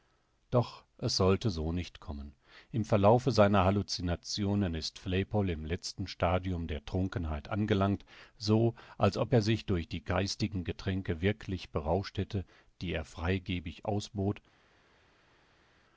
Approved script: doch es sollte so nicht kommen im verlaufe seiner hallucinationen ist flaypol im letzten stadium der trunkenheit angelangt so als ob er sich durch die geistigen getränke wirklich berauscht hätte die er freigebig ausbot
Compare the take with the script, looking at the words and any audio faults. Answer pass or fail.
pass